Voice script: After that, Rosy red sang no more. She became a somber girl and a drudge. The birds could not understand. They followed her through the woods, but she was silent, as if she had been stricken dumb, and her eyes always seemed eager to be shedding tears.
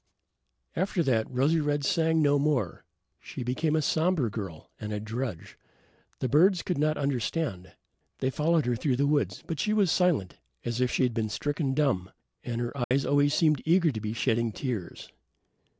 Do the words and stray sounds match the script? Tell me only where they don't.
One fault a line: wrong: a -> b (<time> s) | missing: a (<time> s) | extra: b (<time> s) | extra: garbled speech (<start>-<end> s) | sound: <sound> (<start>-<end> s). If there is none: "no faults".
sound: dropout (12.8-12.9 s)